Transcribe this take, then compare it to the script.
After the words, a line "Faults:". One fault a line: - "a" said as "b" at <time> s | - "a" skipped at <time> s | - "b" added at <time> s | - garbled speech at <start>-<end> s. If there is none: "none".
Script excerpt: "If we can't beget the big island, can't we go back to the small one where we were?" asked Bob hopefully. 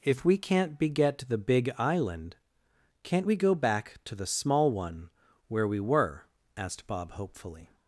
"If we can't beget the big island, can't we go back to the small one where we were?" asked Bob hopefully.
Faults:
none